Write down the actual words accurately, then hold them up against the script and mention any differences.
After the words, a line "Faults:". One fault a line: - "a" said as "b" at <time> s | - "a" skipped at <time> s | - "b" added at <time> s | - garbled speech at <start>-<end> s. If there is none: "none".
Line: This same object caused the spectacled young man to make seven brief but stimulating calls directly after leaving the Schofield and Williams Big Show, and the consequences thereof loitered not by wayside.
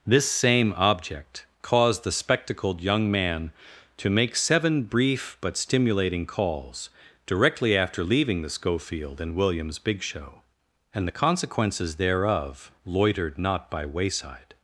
This same object caused the spectacled young man to make seven brief but stimulating calls directly after leaving the Schofield and Williams Big Show, and the consequences thereof loitered not by wayside.
Faults:
none